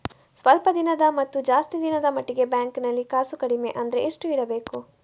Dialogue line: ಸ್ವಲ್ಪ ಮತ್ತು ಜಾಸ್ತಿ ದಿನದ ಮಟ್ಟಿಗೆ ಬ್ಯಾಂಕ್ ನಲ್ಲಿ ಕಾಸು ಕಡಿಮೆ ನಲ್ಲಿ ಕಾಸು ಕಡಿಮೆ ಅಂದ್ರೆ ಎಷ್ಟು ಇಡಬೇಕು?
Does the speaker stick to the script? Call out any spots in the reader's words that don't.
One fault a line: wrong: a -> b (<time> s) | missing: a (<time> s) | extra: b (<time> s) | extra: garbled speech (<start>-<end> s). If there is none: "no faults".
extra: ದಿನದ (0.7 s)
missing: ನಲ್ಲಿ ಕಾಸು ಕಡಿಮೆ (3.7 s)